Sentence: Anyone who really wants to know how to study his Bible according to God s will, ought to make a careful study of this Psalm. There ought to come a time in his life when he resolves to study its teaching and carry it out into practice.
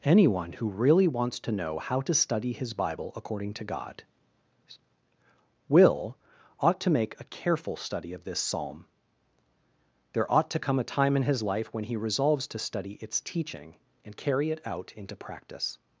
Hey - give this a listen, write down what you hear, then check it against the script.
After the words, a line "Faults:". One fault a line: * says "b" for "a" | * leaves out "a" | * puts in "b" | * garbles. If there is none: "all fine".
Anyone who really wants to know how to study his Bible according to God will, ought to make a careful study of this Psalm. There ought to come a time in his life when he resolves to study its teaching and carry it out into practice.
Faults:
* leaves out "s"